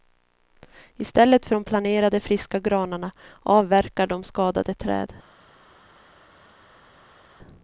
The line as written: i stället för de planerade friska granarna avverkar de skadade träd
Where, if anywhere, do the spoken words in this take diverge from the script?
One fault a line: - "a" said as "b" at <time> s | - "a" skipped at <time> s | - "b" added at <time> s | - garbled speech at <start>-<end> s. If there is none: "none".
none